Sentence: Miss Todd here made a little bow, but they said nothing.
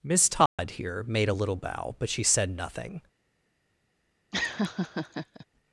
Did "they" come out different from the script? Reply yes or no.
yes